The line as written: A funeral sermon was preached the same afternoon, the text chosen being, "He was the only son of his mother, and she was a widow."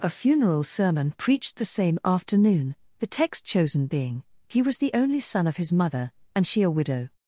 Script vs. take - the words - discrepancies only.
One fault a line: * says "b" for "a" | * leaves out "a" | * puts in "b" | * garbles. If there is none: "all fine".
* leaves out "was"
* leaves out "was"